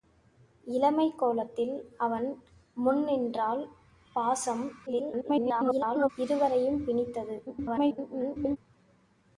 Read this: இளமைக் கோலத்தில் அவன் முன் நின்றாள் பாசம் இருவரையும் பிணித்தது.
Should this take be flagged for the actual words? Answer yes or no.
yes